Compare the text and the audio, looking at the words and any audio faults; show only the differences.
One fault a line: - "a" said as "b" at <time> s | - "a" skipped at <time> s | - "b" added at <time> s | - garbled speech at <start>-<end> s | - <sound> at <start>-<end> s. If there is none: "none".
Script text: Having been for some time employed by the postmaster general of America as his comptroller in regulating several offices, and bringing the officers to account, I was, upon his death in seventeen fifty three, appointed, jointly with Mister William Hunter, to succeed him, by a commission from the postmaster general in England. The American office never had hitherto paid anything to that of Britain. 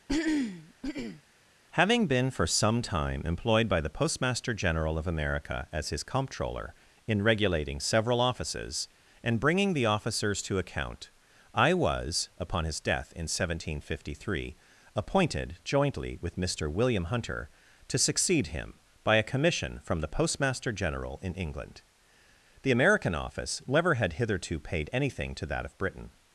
- throat clearing at 0.1-1.2 s